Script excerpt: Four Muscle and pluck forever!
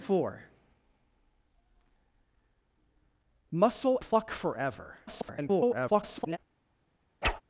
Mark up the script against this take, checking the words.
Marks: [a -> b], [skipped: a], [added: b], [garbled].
Four Muscle [skipped: and] pluck forever! [garbled]